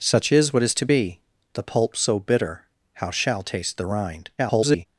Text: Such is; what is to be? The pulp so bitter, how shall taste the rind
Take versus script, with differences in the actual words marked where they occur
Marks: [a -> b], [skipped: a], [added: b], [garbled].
Such is; what is to be? The pulp so bitter, how shall taste the rind [garbled]